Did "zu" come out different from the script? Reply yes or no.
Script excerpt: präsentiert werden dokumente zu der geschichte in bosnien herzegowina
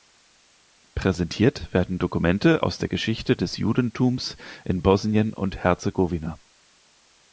yes